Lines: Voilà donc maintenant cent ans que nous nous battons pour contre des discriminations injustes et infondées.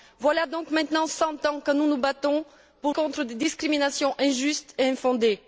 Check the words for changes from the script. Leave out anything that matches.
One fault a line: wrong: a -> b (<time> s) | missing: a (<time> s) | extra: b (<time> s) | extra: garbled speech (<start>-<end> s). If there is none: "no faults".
no faults